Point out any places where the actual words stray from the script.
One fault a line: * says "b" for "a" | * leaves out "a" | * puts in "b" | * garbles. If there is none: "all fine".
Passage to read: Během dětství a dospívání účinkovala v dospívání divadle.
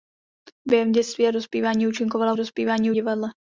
all fine